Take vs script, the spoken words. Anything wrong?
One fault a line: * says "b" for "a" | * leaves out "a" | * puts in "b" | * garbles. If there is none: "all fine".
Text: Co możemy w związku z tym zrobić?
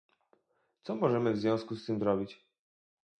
all fine